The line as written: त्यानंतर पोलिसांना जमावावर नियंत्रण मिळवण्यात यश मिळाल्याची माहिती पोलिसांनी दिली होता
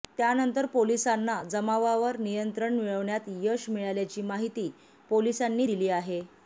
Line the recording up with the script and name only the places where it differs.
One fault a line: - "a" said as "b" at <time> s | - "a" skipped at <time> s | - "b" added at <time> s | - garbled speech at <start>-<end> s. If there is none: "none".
- "होता" said as "आहे" at 5.9 s